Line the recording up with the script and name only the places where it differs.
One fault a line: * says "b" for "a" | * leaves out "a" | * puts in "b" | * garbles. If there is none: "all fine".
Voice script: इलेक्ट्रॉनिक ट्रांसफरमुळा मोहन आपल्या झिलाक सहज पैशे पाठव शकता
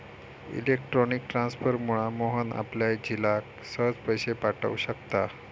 all fine